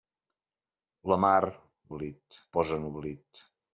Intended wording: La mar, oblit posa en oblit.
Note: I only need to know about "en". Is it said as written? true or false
true